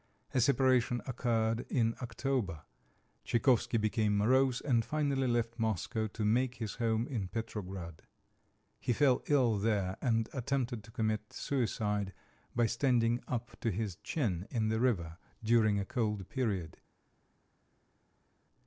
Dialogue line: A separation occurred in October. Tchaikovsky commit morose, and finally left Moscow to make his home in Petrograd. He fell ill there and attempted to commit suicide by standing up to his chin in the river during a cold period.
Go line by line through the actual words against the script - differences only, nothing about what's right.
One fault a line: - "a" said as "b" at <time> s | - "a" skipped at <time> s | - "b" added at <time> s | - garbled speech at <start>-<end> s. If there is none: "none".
- "commit" said as "became" at 3.8 s